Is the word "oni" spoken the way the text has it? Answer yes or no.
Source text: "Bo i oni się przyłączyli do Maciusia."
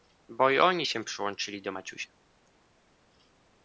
yes